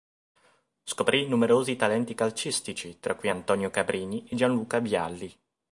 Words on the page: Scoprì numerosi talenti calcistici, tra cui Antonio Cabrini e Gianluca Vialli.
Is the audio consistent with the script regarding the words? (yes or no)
yes